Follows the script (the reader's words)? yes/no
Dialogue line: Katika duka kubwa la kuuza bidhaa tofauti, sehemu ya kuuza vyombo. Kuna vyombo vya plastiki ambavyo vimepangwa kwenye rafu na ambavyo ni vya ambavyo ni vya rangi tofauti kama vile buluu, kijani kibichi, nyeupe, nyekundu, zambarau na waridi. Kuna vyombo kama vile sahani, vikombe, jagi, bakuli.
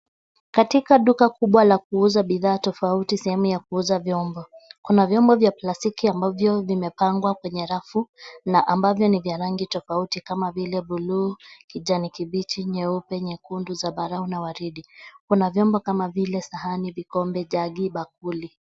no